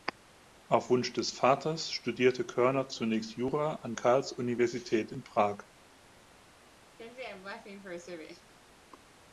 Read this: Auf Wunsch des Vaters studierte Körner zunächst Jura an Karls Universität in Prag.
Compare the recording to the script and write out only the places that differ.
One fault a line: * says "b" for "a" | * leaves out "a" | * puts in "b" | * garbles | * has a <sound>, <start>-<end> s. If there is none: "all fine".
* has a laugh, 7.0-8.5 s